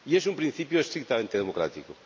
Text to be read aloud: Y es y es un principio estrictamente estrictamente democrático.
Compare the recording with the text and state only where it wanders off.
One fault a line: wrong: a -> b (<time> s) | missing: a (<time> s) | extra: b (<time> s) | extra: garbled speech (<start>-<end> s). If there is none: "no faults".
missing: y es (0.2 s)
missing: estrictamente (1.4 s)